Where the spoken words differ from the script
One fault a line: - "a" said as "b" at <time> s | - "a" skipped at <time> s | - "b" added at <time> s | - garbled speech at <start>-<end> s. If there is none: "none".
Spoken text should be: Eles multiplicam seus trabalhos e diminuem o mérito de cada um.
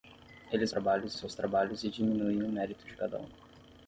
- "multiplicam" said as "trabalhos" at 0.7 s